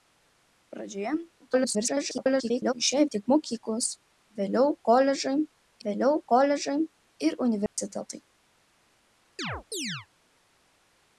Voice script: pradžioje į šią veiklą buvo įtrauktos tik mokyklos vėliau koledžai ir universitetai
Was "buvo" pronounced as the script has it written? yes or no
no